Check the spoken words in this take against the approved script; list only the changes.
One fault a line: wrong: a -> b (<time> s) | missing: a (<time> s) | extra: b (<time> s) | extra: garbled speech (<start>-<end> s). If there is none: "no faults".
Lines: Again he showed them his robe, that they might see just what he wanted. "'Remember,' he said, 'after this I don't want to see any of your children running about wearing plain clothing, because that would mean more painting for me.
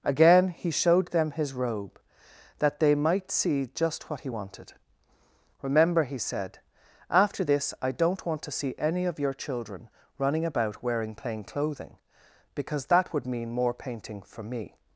no faults